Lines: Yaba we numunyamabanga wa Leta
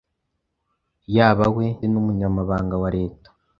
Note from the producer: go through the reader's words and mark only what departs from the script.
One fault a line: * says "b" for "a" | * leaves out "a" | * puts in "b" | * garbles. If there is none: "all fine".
all fine